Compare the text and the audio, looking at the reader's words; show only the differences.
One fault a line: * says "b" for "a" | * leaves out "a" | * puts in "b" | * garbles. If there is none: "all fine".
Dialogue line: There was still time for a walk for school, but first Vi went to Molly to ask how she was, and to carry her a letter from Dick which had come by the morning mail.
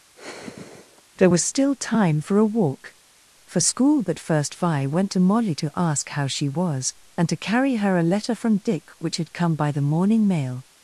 all fine